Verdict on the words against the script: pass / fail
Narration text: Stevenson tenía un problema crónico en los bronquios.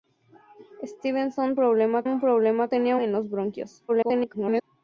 fail